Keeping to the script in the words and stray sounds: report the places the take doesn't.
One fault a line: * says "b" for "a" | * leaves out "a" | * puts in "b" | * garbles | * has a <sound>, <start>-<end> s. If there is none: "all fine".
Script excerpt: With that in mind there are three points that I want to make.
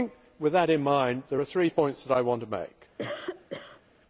* has a cough, 3.0-3.8 s